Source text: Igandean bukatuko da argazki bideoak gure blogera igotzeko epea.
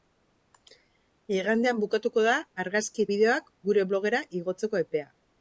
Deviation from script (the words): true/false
false